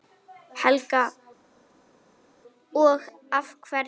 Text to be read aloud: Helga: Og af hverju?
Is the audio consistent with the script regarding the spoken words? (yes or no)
yes